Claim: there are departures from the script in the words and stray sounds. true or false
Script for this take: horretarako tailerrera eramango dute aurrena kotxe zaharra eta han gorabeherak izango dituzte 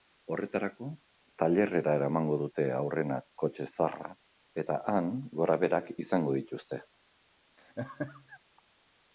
true